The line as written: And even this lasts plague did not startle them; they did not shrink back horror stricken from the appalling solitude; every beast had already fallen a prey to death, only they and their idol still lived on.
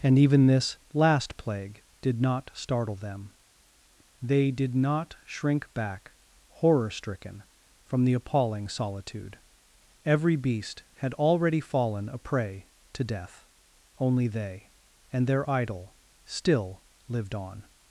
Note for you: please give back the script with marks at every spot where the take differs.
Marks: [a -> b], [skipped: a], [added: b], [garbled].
And even this [lasts -> last] plague did not startle them; they did not shrink back horror stricken from the appalling solitude; every beast had already fallen a prey to death, only they and their idol still lived on.